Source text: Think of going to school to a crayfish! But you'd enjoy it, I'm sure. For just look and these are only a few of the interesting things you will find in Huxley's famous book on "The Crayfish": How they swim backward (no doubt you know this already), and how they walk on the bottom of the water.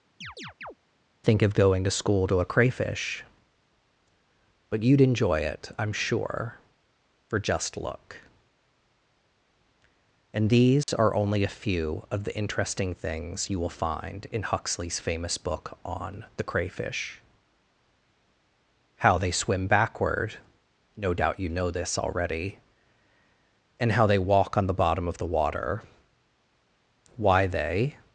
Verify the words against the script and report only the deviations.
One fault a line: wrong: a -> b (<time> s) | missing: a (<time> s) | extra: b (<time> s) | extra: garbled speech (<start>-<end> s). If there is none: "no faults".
extra: Why they (27.1 s)